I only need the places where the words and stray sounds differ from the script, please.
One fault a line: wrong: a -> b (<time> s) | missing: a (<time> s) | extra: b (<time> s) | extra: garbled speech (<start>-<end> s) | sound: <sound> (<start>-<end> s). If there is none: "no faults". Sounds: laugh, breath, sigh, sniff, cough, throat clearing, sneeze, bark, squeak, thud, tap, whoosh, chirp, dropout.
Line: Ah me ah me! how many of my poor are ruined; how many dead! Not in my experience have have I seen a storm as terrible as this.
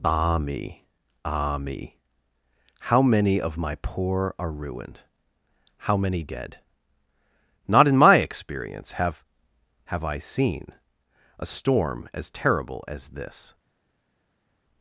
no faults